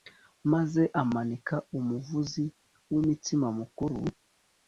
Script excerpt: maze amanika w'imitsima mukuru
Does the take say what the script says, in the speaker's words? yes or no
no